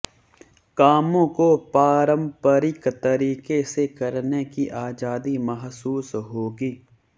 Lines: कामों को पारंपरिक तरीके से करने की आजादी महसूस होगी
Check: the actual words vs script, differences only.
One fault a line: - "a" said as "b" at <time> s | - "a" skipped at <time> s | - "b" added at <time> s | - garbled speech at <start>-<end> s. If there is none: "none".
none